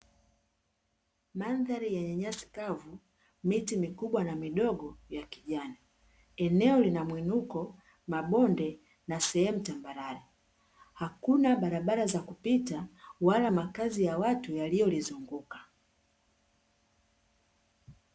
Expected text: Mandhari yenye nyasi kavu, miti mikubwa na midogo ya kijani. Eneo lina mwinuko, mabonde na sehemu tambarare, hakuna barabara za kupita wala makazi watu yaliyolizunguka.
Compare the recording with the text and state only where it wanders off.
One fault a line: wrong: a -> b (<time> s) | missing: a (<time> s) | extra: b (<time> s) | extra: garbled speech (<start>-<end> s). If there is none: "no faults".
extra: ya (14.0 s)